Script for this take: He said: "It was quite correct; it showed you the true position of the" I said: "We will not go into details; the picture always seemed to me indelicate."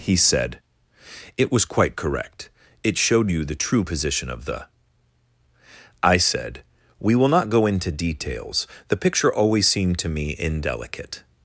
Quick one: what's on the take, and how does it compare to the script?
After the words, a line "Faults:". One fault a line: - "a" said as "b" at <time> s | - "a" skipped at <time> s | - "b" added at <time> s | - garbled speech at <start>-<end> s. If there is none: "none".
He said: "It was quite correct; it showed you the true position of the" I said: "We will not go into details; the picture always seemed to me indelicate."
Faults:
none